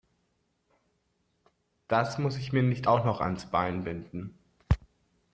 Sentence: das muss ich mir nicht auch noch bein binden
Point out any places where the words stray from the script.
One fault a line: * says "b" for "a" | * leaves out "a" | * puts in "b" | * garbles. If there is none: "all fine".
* puts in "ans"